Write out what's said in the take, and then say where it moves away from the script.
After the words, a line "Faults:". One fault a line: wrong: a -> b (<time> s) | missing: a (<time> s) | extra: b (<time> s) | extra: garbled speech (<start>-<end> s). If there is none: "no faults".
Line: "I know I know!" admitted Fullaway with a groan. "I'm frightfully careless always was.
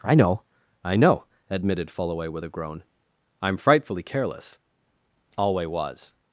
"I know I know!" admitted Fullaway with a groan. "I'm frightfully careless alway was.
Faults:
wrong: always -> alway (5.4 s)